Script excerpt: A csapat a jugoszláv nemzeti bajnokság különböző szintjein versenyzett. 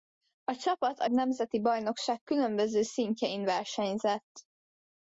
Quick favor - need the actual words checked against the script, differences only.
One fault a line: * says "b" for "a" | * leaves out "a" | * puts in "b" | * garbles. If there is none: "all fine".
* leaves out "jugoszláv"